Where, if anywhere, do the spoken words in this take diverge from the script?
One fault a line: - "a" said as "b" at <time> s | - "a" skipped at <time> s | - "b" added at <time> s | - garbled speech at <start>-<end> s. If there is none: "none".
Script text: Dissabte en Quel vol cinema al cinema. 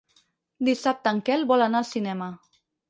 - "cinema" said as "anar" at 1.7 s